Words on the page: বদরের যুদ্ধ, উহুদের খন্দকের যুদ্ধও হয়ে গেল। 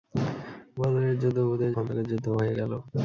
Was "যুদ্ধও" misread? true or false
false